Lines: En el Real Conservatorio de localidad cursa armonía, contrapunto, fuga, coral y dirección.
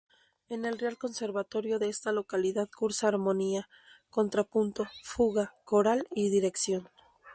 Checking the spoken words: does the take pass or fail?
fail